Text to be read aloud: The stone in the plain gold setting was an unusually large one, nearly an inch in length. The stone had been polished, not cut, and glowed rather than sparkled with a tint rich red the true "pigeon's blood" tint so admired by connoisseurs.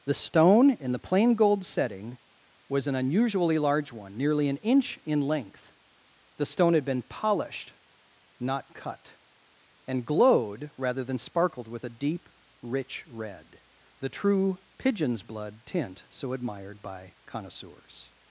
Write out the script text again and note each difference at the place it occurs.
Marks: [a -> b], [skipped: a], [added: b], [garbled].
The stone in the plain gold setting was an unusually large one, nearly an inch in length. The stone had been polished, not cut, and glowed rather than sparkled with a [tint -> deep] rich red the true "pigeon's blood" tint so admired by connoisseurs.